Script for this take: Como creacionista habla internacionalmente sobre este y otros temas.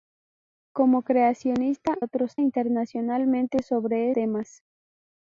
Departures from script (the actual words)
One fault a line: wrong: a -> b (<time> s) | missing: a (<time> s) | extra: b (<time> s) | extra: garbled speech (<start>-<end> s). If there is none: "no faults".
wrong: habla -> otros (2.0 s)
missing: este y otros (4.1 s)